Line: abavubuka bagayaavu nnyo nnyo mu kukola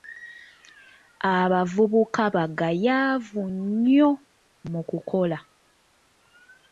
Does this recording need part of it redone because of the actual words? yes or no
yes